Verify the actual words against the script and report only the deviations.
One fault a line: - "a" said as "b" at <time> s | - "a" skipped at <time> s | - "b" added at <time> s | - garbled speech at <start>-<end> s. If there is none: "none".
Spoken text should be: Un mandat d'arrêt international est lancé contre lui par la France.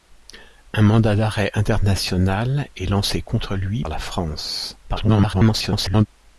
- "par" skipped at 3.9 s
- garbled speech at 4.8-6.1 s